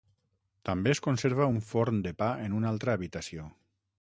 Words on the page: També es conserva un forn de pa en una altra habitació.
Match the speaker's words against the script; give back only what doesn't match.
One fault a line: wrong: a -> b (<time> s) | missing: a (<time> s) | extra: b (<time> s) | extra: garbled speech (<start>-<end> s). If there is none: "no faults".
no faults